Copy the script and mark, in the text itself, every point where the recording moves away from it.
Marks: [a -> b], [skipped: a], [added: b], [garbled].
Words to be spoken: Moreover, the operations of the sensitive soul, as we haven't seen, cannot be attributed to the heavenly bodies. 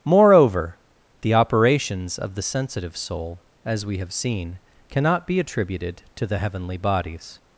Moreover, the operations of the sensitive soul, as we [haven't -> have] seen, cannot be attributed to the heavenly bodies.